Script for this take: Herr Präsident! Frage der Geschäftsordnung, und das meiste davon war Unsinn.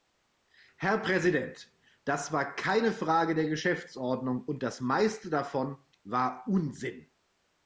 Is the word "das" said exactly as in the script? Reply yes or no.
yes